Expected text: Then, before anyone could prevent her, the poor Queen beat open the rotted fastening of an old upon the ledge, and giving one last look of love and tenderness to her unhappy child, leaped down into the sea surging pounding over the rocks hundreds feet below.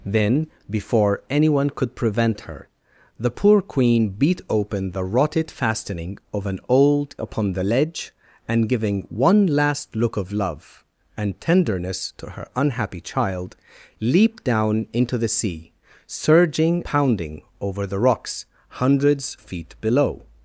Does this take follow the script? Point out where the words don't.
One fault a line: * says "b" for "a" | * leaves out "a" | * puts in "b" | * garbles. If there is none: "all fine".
all fine